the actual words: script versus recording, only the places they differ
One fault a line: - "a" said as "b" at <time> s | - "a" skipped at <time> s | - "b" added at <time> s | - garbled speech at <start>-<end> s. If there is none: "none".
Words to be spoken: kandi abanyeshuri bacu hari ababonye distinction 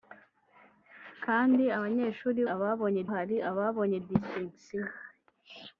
- "bacu" said as "ababonye" at 2.5 s